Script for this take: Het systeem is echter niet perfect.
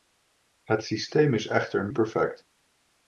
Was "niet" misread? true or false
true